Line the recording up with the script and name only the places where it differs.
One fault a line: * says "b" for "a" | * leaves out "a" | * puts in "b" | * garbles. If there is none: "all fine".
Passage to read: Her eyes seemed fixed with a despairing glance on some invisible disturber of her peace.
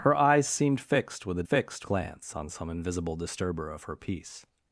* says "fixed" for "despairing"